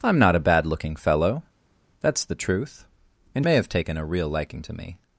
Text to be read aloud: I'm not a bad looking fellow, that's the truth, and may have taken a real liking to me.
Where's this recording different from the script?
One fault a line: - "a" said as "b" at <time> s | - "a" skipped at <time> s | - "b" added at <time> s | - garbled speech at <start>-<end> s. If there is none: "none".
none